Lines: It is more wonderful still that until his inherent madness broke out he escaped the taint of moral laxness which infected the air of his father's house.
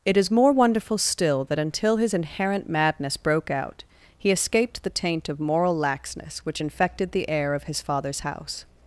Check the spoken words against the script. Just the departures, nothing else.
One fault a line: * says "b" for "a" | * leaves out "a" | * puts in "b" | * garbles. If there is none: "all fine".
all fine